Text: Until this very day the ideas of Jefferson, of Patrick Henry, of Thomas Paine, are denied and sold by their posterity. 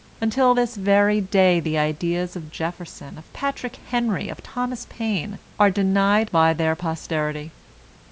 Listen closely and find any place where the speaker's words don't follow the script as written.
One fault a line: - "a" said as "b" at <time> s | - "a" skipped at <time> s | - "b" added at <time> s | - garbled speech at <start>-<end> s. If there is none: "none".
- "and sold" skipped at 6.3 s